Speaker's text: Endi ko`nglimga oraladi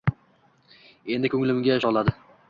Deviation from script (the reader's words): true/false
false